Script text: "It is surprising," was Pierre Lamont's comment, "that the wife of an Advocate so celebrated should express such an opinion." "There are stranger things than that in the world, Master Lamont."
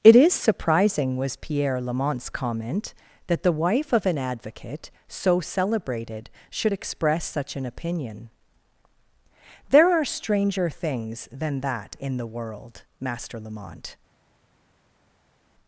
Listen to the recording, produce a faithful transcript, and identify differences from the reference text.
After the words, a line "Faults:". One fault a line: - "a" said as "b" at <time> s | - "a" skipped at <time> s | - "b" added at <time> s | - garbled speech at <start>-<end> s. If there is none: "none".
"It is surprising," was Pierre Lamont's comment, "that the wife of an Advocate so celebrated should express such an opinion." "There are stranger things than that in the world, Master Lamont."
Faults:
none